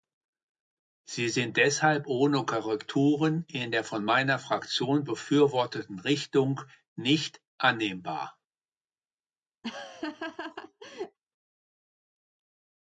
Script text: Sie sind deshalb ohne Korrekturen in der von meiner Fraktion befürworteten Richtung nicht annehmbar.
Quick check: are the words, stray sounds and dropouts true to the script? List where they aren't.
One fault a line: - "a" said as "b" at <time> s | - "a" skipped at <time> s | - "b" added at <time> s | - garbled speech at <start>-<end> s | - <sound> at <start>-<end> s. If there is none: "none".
- laugh at 9.6-11.2 s